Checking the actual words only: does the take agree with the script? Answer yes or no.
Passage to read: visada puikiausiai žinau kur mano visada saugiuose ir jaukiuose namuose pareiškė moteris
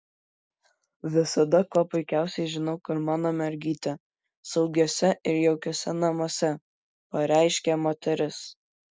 no